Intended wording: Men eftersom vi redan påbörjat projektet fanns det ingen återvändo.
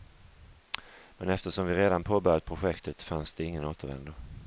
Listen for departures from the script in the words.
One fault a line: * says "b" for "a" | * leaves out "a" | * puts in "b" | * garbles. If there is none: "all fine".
all fine